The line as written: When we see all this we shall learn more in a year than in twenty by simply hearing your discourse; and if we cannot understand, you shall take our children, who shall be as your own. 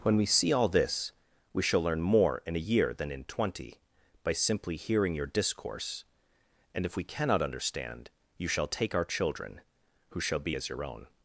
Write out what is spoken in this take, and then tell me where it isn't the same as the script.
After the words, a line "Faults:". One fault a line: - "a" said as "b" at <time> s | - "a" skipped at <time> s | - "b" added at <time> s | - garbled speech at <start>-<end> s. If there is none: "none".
When we see all this we shall learn more in a year than in twenty by simply hearing your discourse; and if we cannot understand, you shall take our children, who shall be as your own.
Faults:
none